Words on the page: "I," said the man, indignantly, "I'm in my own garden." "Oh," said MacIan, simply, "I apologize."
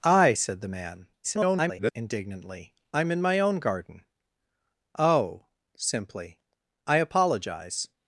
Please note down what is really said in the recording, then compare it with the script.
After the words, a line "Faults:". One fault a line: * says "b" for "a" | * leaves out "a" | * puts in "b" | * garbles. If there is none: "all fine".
"I," said the man, [garbled] indignantly, "I'm in my own garden." "Oh," simply, "I apologize."
Faults:
* garbles
* leaves out "said MacIan"